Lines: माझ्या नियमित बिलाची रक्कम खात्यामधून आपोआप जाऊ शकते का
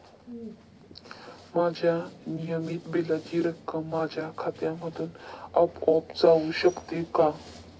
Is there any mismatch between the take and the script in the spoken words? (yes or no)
yes